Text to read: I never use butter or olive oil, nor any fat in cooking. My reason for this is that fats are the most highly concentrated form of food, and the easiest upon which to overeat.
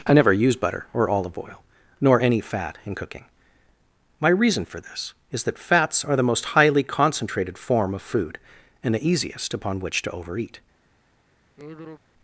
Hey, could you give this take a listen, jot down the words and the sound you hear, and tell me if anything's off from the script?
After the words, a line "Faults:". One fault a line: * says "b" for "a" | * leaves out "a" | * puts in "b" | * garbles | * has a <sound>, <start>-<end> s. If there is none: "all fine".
I never use butter or olive oil, nor any fat in cooking. My reason for this is that fats are the most highly concentrated form of food, and the easiest upon which to overeat.
Faults:
* has a sigh, 11.6-12.0 s